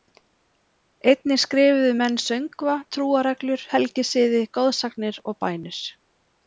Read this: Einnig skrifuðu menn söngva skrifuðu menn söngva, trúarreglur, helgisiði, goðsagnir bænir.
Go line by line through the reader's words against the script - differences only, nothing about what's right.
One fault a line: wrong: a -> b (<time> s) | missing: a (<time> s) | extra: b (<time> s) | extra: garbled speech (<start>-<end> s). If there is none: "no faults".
missing: skrifuðu menn söngva (2.8 s)
extra: og (5.3 s)